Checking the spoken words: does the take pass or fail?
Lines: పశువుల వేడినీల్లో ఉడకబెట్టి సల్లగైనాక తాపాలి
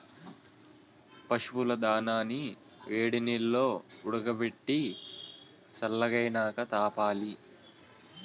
fail